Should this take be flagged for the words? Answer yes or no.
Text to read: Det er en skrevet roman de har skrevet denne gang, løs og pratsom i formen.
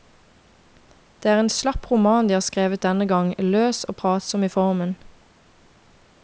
yes